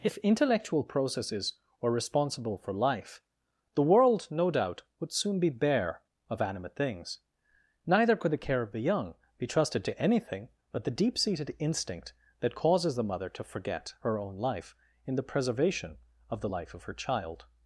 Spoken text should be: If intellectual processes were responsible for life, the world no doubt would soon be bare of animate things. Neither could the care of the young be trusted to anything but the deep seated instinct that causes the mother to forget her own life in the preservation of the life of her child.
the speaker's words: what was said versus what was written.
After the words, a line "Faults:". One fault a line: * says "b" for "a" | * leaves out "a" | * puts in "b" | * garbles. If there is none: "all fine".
If intellectual processes were responsible for life, the world no doubt would soon be bare of animate things. Neither could the care of the young be trusted to anything but the deep seated instinct that causes the mother to forget her own life in the preservation of the life of her child.
Faults:
all fine